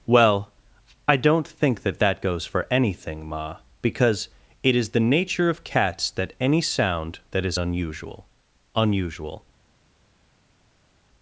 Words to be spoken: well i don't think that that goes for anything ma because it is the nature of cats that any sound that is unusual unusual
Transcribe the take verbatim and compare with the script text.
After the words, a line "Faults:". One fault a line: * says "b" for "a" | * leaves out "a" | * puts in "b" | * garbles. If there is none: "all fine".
well i don't think that that goes for anything ma because it is the nature of cats that any sound that is unusual unusual
Faults:
all fine